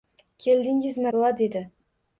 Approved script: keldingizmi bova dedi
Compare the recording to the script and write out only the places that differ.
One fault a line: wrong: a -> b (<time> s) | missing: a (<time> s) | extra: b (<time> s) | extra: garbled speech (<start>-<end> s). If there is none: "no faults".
no faults